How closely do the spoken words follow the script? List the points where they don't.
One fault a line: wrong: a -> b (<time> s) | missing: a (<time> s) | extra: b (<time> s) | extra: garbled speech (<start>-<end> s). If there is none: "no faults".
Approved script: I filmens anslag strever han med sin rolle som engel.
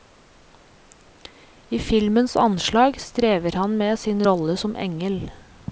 no faults